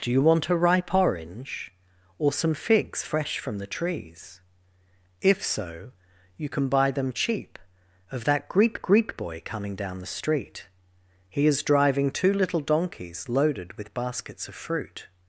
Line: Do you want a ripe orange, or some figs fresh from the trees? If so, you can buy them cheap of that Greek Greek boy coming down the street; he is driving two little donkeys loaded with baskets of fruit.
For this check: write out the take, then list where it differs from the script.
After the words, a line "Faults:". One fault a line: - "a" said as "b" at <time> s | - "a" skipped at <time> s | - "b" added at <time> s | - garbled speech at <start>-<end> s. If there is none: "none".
Do you want a ripe orange, or some figs fresh from the trees? If so, you can buy them cheap of that Greek Greek boy coming down the street; he is driving two little donkeys loaded with baskets of fruit.
Faults:
none